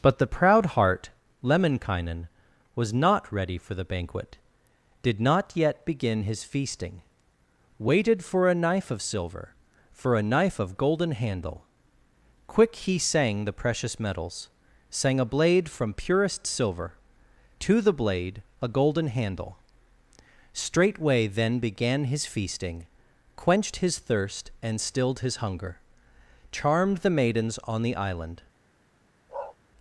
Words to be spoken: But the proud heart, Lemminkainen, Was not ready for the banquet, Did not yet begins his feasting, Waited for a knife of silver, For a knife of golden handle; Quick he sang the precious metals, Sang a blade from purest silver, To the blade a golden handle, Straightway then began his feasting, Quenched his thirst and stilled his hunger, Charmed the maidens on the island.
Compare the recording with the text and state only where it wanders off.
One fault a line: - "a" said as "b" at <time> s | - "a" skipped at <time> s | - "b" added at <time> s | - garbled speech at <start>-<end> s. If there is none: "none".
- "begins" said as "begin" at 5.8 s